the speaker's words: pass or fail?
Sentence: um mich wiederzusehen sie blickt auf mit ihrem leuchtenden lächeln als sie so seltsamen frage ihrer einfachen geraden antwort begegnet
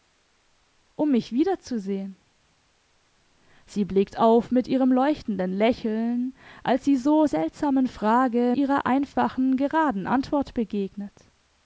pass